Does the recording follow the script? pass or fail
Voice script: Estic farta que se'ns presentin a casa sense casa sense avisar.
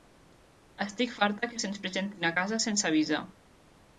fail